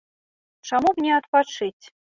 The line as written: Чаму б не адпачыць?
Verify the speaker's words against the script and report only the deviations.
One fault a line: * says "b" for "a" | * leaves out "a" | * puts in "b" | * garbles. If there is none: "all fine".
all fine